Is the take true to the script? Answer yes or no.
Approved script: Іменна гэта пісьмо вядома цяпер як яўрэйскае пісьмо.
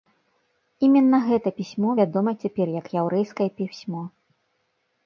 yes